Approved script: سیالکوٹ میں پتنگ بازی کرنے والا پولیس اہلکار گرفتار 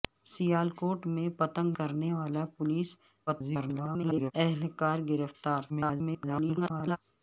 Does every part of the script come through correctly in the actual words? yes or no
no